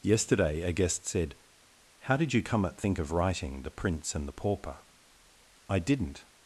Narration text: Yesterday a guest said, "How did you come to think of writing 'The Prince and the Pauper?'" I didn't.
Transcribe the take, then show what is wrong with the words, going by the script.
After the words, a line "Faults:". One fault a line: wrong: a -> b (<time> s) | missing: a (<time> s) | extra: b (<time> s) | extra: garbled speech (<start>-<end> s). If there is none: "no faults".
Yesterday a guest said, "How did you come at think of writing 'The Prince and the Pauper?'" I didn't.
Faults:
wrong: to -> at (2.6 s)